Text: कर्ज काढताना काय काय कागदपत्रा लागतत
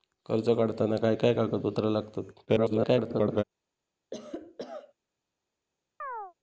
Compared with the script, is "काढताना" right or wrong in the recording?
right